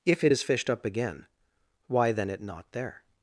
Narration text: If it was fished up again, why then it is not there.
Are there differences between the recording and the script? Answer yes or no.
yes